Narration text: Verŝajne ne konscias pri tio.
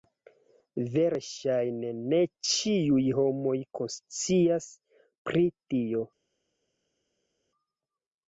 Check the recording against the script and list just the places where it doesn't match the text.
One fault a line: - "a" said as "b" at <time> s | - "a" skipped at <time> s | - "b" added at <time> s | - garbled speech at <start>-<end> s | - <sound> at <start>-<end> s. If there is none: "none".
- "ĉiuj homoj" added at 2.5 s